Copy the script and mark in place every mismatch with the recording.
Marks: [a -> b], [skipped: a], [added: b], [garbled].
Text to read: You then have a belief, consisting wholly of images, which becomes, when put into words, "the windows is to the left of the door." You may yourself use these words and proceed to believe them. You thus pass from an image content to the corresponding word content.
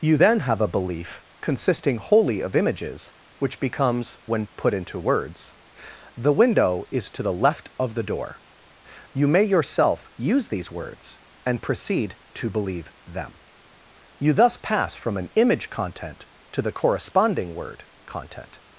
You then have a belief, consisting wholly of images, which becomes, when put into words, "the [windows -> window] is to the left of the door." You may yourself use these words and proceed to believe them. You thus pass from an image content to the corresponding word content.